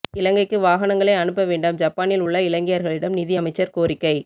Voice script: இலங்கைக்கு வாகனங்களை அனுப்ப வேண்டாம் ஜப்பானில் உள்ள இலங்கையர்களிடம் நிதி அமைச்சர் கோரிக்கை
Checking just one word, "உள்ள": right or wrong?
right